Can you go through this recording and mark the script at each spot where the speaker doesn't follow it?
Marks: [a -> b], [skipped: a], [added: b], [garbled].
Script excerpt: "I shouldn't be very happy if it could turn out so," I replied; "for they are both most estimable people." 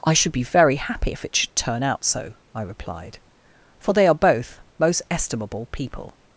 "I [shouldn't -> should] be very happy if it [could -> should] turn out so," I replied; "for they are both most estimable people."